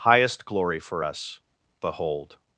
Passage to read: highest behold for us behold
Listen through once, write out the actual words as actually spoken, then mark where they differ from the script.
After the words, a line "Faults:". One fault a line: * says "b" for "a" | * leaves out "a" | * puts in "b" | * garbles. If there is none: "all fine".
highest glory for us behold
Faults:
* says "glory" for "behold"